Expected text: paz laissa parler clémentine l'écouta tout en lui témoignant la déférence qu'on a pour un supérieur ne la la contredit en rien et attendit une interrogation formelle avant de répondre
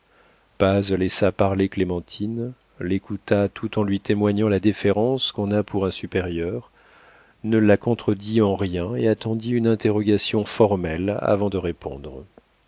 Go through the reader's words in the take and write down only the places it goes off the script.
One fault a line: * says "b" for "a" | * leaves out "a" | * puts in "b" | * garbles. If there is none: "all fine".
* leaves out "la"